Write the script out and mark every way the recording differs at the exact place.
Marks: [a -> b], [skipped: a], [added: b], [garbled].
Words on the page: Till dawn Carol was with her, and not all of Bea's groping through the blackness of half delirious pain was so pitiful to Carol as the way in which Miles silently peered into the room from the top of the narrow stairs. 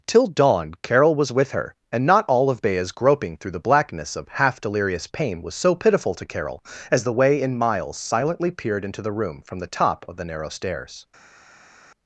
Till dawn Carol was with her, and not all of Bea's groping through the blackness of half delirious pain was so pitiful to Carol as the way in [skipped: which] Miles silently peered into the room from the top of the narrow stairs.